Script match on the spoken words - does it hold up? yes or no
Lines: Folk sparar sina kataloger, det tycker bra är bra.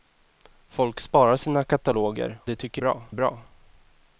yes